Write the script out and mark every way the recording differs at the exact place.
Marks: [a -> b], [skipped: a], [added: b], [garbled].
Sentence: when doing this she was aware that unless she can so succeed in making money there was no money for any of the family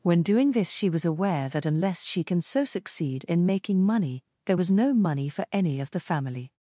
when doing this she was aware that unless she can so succeed in making money there was no money for any of the family